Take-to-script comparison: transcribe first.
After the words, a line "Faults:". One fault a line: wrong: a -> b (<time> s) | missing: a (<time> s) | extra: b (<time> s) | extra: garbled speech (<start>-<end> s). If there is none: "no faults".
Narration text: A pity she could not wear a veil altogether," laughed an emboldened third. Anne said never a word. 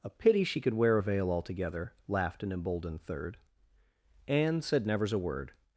A pity she could wear a veil altogether," laughed an emboldened third. Anne said nevers a word.
Faults:
missing: not (0.7 s)
wrong: never -> nevers (4.9 s)